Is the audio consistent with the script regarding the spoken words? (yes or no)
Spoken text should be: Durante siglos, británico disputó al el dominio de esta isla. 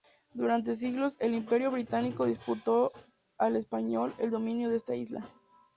no